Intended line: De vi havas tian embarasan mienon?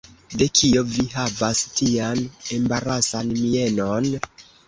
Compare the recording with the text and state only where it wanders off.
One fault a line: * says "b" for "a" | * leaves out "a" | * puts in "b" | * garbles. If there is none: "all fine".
* puts in "kio"